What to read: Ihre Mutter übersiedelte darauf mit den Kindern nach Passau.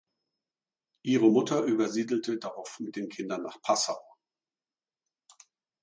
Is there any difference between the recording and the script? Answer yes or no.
no